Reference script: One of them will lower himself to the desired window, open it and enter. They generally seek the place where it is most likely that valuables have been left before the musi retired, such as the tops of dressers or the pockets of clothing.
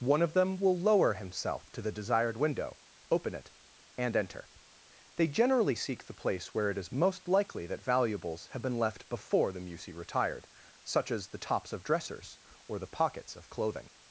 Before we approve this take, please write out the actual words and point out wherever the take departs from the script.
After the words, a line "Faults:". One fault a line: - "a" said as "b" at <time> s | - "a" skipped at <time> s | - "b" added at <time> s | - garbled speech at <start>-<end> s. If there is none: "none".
One of them will lower himself to the desired window, open it and enter. They generally seek the place where it is most likely that valuables have been left before the musi retired, such as the tops of dressers or the pockets of clothing.
Faults:
none